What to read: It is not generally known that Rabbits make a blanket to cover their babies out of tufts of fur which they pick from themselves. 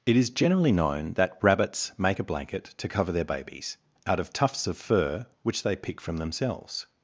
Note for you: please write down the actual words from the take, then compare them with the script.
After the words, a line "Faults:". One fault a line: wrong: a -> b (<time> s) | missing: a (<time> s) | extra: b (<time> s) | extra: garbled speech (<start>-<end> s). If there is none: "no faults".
It is generally known that Rabbits make a blanket to cover their babies out of tufts of fur which they pick from themselves.
Faults:
missing: not (0.3 s)